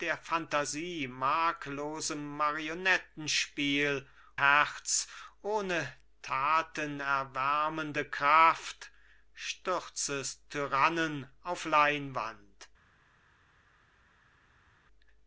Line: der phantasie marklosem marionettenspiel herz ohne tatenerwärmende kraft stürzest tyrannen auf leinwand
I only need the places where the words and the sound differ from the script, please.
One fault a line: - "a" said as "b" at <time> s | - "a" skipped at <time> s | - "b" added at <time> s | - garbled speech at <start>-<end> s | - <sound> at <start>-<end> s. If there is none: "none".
none